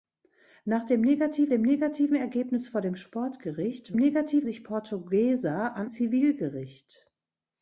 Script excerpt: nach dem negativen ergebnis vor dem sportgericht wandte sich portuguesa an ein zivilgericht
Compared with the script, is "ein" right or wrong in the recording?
wrong